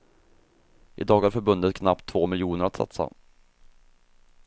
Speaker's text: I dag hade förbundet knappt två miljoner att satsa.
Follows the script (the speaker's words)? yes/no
no